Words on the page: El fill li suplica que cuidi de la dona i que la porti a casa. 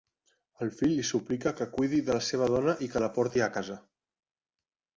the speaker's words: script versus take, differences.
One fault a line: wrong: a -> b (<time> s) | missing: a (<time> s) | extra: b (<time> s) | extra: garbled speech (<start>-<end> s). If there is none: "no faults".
extra: seva (2.3 s)